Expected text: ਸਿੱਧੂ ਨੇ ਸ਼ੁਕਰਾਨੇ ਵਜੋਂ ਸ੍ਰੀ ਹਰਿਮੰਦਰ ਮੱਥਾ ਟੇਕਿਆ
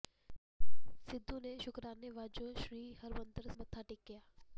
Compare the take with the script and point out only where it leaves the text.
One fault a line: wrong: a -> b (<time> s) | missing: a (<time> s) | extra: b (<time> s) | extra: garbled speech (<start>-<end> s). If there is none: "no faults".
no faults